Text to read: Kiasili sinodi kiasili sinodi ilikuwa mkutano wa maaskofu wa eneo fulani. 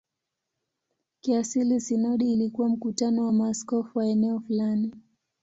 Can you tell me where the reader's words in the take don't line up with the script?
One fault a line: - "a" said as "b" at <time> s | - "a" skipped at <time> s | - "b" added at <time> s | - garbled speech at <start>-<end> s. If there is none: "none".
- "kiasili sinodi" skipped at 2.3 s